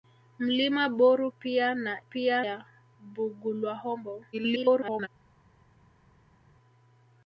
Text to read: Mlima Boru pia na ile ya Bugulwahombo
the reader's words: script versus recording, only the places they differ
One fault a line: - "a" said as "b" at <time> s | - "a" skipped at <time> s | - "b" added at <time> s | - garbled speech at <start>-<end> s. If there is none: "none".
- "ile" said as "pia" at 2.0 s
- garbled speech at 4.3-5.1 s